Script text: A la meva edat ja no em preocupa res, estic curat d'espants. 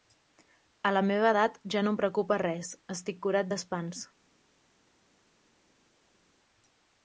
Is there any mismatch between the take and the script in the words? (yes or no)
no